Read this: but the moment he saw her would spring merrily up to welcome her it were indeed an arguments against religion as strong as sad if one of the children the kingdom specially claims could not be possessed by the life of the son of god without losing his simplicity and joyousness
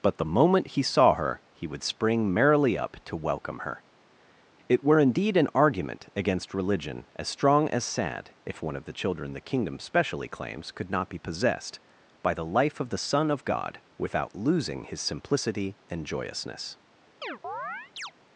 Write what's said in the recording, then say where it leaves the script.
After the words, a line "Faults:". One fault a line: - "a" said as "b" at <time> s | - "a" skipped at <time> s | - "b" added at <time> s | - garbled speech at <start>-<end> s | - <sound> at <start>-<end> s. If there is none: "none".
but the moment he saw her he would spring merrily up to welcome her it were indeed an argument against religion as strong as sad if one of the children the kingdom specially claims could not be possessed by the life of the son of god without losing his simplicity and joyousness
Faults:
- "he" added at 1.5 s
- "arguments" said as "argument" at 5.5 s
- chirp at 17.2-18.1 s